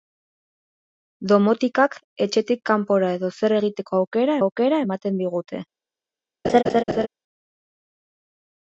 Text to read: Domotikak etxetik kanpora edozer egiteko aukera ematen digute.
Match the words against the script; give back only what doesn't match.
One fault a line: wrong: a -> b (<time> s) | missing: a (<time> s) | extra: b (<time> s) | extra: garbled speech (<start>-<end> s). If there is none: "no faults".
extra: aukera (4.4 s)